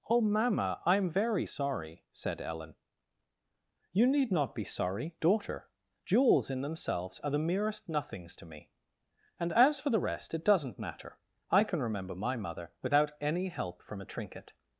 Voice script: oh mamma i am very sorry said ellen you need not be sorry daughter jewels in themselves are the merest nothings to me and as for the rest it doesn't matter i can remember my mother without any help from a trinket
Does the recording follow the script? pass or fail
pass